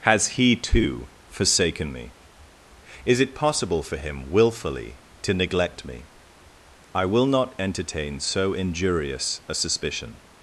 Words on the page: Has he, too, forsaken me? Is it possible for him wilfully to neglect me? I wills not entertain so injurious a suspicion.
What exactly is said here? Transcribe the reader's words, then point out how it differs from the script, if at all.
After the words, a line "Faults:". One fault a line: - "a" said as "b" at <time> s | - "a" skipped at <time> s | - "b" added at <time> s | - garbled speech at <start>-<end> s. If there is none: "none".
Has he, too, forsaken me? Is it possible for him wilfully to neglect me? I will not entertain so injurious a suspicion.
Faults:
- "wills" said as "will" at 7.0 s